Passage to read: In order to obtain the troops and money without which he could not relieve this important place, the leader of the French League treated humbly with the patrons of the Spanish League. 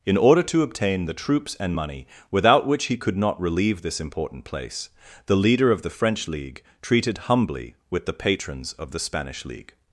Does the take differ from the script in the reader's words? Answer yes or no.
no